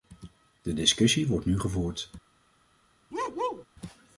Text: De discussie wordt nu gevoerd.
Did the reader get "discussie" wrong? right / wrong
right